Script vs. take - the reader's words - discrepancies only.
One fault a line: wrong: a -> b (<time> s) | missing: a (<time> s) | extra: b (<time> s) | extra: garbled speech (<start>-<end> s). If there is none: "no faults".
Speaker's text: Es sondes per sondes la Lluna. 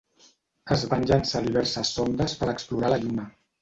extra: van llançar diverses (0.9 s)
wrong: sondes -> explorar (2.6 s)